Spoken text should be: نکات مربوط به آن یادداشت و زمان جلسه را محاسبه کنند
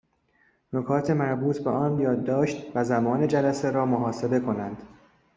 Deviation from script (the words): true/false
false